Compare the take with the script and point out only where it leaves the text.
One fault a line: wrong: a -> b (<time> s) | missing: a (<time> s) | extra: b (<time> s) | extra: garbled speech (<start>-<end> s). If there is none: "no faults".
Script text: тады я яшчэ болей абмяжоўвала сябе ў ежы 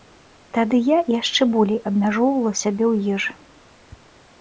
no faults